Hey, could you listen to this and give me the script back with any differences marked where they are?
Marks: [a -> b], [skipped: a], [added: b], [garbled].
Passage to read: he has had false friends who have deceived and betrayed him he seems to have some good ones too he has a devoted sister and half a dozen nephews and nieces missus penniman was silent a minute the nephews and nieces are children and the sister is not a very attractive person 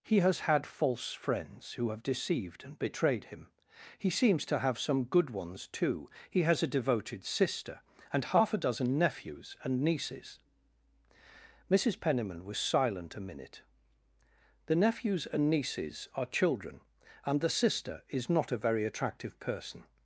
he has had false friends who have deceived and betrayed him he seems to have some good ones too he has a devoted sister and half a dozen nephews and nieces missus penniman was silent a minute the nephews and nieces are children and the sister is not a very attractive person